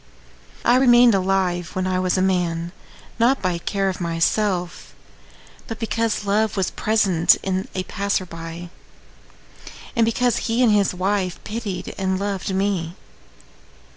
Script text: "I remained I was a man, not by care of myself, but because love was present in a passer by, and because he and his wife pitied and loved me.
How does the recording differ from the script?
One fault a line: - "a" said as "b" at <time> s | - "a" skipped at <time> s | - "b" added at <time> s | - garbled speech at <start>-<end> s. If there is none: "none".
- "alive when" added at 1.1 s